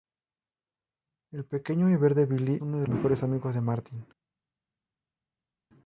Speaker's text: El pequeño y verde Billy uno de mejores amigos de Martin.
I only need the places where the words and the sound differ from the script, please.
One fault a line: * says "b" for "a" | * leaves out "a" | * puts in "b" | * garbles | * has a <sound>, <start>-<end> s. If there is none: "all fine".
all fine